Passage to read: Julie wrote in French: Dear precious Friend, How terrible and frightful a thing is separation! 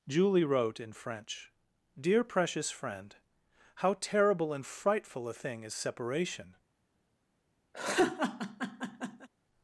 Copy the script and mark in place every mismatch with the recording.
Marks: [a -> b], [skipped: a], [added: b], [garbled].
Julie wrote in French: Dear precious Friend, How terrible and frightful a thing is separation!